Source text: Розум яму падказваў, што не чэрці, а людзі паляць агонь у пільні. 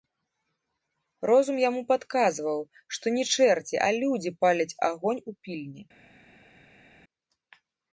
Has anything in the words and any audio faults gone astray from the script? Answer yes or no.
no